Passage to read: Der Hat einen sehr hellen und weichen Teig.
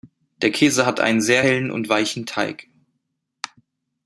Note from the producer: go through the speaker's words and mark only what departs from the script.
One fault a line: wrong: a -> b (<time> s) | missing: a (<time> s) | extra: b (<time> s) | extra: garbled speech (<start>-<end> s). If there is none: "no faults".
extra: Käse (0.5 s)